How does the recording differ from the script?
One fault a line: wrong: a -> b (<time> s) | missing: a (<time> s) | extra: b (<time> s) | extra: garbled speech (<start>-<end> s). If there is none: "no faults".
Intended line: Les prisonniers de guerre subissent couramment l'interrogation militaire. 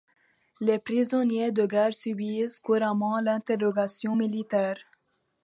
no faults